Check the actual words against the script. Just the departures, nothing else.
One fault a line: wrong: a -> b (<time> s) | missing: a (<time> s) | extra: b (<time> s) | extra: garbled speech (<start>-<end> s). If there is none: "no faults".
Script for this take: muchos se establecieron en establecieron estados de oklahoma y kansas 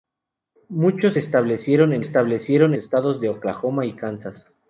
no faults